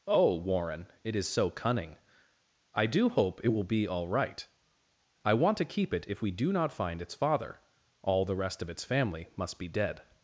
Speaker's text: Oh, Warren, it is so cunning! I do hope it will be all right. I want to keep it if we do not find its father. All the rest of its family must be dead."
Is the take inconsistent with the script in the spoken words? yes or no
no